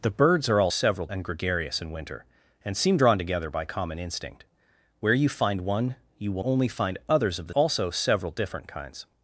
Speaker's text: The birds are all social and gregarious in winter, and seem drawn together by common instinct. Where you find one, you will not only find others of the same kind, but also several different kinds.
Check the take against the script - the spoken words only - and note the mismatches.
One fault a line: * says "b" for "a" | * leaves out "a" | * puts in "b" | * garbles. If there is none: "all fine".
* says "several" for "social"
* leaves out "not"
* leaves out "same kind but"